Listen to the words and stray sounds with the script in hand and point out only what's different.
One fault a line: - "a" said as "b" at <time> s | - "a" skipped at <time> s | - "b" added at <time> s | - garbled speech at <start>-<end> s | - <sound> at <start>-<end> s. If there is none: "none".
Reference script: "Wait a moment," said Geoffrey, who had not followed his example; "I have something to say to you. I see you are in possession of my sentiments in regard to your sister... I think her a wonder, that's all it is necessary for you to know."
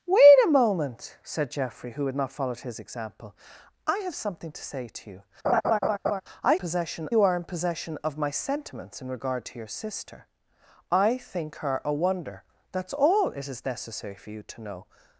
- laugh at 5.4-6.2 s
- "see" said as "possession" at 6.5 s